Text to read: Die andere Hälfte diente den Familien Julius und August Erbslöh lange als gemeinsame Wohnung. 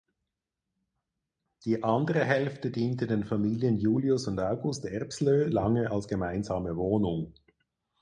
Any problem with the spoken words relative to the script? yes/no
no